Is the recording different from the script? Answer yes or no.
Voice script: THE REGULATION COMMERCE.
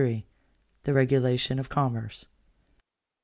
yes